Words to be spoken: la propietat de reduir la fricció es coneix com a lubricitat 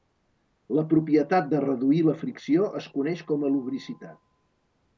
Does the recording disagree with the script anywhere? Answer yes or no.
no